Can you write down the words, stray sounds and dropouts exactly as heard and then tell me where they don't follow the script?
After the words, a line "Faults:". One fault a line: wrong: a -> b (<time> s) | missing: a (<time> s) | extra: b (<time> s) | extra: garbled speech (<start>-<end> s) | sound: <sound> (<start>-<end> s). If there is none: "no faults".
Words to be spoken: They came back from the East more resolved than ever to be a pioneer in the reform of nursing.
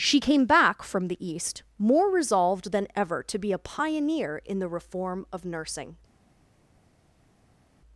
She came back from the East more resolved than ever to be a pioneer in the reform of nursing.
Faults:
wrong: They -> She (0.0 s)